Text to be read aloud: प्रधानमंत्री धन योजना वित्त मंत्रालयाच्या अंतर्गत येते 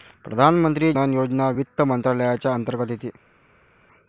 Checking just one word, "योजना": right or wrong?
right